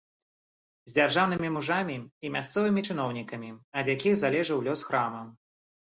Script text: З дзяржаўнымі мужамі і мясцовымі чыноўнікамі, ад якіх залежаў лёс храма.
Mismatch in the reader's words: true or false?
false